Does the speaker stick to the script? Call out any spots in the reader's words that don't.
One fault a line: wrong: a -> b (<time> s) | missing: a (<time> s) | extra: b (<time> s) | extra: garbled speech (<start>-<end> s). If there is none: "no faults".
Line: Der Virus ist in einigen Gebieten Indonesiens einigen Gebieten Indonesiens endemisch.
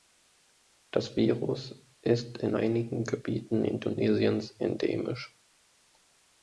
wrong: Der -> Das (0.9 s)
missing: einigen Gebieten Indonesiens (4.5 s)